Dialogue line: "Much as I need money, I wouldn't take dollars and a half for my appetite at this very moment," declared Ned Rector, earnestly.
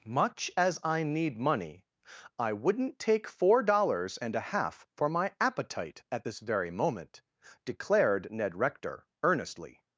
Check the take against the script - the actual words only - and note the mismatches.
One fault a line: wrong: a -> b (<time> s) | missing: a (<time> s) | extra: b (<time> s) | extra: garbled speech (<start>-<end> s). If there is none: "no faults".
extra: four (3.3 s)